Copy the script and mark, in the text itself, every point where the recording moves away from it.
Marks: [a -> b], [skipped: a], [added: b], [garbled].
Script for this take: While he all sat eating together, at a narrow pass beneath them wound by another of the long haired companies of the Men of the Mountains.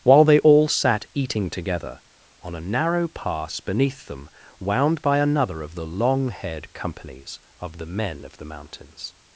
While [he -> they] all sat eating together, [at -> on] a narrow pass beneath them wound by another of the long haired companies of the Men of the Mountains.